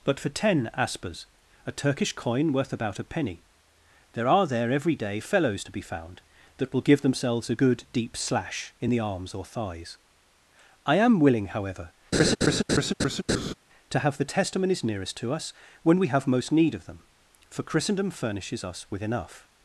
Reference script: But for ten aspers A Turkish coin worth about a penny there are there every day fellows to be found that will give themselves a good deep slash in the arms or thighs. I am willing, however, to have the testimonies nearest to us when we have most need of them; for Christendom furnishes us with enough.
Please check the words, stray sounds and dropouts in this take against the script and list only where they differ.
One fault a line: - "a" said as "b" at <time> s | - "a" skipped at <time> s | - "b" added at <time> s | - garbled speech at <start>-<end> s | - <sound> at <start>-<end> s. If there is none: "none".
- laugh at 12.1-13.5 s